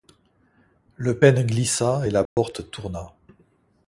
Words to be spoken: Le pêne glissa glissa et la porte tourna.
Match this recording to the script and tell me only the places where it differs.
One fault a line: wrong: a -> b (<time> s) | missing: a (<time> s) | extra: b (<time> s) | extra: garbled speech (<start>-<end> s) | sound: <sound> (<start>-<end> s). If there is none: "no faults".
missing: glissa (2.1 s)
sound: dropout (2.3-2.4 s)